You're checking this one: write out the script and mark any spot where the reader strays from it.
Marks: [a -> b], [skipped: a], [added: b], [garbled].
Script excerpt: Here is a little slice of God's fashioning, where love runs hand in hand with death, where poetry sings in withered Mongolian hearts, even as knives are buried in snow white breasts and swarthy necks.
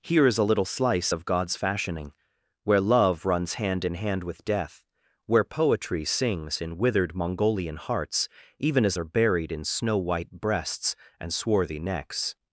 Here is a little slice of God's fashioning, where love runs hand in hand with death, where poetry sings in withered Mongolian hearts, even as [skipped: knives] are buried in snow white breasts and swarthy necks.